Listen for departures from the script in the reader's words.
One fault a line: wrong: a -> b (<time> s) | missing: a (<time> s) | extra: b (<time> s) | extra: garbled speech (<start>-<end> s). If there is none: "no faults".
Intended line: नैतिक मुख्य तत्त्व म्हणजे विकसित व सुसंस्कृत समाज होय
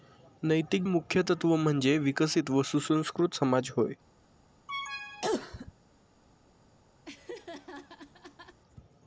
no faults